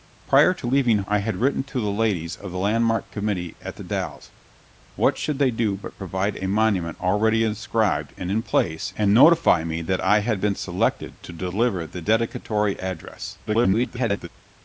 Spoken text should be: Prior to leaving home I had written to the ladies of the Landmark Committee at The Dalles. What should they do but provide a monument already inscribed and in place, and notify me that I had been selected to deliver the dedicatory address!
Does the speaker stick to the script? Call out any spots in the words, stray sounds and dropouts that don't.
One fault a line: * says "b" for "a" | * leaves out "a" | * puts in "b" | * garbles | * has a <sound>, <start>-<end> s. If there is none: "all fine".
* leaves out "home"
* garbles